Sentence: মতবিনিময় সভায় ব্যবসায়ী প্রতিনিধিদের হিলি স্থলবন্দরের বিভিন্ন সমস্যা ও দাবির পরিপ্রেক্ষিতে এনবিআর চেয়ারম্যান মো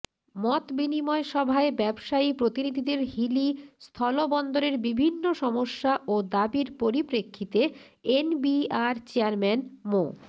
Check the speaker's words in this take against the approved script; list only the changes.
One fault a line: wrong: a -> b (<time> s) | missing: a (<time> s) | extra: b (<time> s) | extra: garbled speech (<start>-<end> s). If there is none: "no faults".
no faults